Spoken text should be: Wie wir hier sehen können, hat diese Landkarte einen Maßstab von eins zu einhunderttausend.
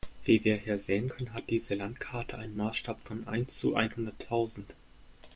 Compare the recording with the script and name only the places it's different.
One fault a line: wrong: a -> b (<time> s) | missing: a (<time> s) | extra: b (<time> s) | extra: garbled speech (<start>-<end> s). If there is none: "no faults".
no faults